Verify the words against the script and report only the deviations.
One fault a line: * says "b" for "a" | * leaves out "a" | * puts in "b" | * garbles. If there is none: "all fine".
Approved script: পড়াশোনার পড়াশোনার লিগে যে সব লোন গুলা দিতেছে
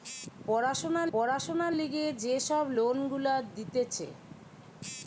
all fine